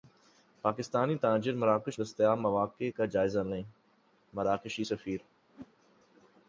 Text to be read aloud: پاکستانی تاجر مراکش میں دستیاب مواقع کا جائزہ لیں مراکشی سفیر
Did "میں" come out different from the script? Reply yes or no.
yes